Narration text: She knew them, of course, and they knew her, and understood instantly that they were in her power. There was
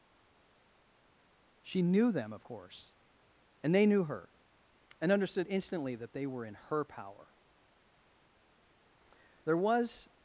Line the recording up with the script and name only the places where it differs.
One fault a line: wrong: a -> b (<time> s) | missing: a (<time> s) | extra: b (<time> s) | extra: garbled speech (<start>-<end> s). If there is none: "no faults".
no faults